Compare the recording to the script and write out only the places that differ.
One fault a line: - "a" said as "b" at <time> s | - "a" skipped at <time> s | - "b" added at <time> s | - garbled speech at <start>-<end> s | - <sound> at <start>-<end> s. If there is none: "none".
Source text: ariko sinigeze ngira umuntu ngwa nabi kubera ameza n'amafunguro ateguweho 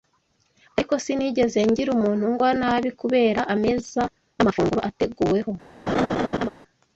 - laugh at 5.9-6.5 s